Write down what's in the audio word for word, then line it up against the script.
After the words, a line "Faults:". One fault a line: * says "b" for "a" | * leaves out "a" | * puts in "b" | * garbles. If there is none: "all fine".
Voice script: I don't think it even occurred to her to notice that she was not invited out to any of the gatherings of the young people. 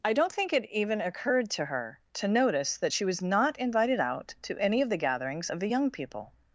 I don't think it even occurred to her to notice that she was not invited out to any of the gatherings of the young people.
Faults:
all fine